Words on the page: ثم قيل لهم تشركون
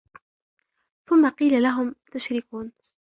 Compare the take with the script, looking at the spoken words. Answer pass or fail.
pass